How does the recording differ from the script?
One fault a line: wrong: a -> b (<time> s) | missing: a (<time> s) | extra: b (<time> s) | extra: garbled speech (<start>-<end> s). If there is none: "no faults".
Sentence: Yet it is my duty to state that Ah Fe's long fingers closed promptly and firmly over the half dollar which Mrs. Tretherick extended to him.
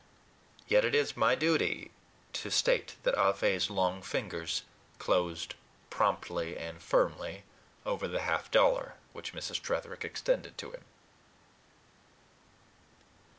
no faults